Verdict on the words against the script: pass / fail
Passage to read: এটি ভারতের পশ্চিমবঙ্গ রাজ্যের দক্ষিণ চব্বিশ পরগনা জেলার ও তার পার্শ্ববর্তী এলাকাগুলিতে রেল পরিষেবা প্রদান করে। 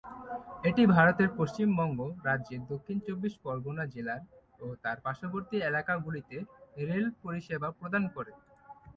pass